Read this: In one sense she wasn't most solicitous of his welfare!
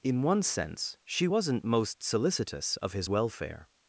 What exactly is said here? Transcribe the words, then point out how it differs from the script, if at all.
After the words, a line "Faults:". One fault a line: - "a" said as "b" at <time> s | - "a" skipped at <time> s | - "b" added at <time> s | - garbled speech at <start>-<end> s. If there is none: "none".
In one sense she wasn't most solicitous of his welfare!
Faults:
none